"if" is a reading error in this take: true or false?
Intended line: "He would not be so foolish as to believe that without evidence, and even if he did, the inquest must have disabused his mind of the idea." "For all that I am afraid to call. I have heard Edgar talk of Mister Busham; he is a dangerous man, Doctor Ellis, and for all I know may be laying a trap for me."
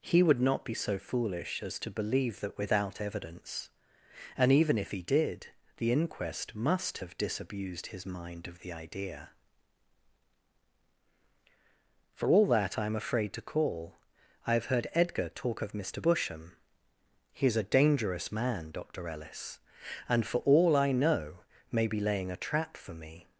false